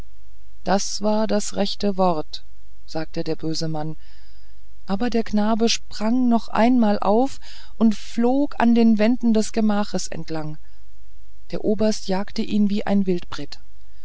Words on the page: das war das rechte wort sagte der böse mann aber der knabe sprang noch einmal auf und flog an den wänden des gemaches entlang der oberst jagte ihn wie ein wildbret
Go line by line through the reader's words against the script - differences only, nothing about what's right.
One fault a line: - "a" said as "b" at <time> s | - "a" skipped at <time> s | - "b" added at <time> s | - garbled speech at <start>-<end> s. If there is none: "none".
none